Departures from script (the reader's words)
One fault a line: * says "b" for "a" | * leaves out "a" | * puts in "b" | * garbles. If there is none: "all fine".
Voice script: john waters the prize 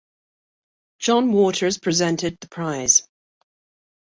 * puts in "presented"